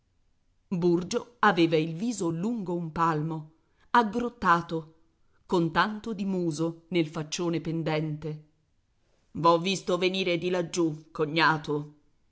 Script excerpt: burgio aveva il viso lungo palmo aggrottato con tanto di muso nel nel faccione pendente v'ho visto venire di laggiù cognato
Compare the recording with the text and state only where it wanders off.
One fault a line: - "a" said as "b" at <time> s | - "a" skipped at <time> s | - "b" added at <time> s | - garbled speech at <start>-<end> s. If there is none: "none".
- "un" added at 2.7 s
- "nel" skipped at 7.1 s